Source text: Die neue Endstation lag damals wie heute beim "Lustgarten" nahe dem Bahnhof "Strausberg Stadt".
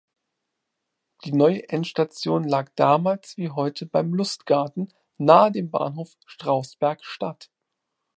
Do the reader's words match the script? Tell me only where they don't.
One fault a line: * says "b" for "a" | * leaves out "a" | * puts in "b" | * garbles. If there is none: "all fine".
all fine